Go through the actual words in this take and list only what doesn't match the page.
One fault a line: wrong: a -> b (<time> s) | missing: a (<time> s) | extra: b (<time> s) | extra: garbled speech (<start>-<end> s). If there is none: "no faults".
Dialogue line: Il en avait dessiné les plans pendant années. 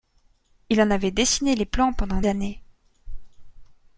no faults